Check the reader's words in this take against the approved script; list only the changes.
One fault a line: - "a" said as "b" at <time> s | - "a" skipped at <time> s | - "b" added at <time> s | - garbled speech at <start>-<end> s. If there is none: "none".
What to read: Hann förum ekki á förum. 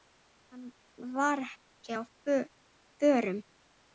- "förum" said as "var" at 1.1 s